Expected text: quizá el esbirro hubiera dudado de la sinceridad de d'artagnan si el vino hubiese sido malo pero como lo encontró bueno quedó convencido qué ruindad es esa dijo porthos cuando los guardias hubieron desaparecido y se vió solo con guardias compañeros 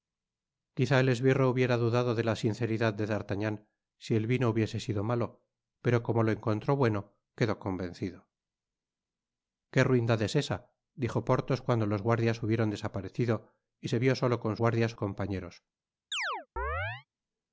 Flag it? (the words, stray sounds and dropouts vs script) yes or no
yes